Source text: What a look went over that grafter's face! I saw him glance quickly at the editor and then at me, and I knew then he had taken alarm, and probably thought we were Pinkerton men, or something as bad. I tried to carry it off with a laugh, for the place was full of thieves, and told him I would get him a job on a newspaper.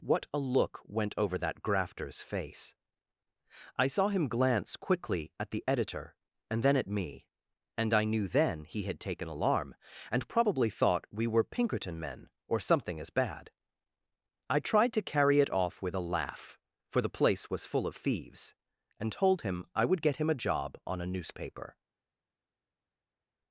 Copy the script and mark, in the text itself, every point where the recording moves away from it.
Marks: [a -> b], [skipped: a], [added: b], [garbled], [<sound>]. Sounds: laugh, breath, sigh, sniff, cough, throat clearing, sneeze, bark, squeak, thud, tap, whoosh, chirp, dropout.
What a look went over that grafter's face! I saw him glance quickly at the editor and then at me, and I knew then he had taken alarm, and probably thought we were Pinkerton men, or something as bad. I tried to carry it off with a laugh, for the place was full of thieves, and told him I would get him a job on a newspaper.